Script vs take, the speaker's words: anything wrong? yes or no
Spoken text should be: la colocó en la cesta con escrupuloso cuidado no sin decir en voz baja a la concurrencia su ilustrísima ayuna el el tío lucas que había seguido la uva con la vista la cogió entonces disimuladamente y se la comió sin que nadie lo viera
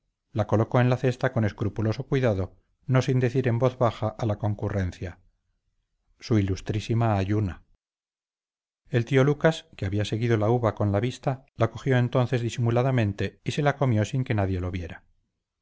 yes